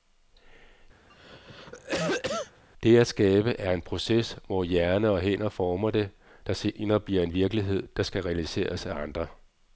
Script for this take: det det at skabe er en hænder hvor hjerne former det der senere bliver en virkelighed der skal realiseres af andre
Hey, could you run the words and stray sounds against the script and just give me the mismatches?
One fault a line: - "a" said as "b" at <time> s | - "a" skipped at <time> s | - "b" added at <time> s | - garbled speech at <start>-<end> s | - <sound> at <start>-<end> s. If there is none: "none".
- cough at 1.1-2.6 s
- "det" skipped at 3.0 s
- "hænder" said as "proces" at 3.8 s
- "og hænder" added at 5.1 s